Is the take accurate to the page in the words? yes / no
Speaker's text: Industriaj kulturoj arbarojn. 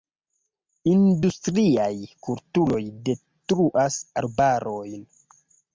no